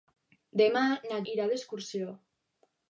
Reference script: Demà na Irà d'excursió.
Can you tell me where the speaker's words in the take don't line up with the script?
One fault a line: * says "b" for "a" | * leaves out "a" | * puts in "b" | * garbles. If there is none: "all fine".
all fine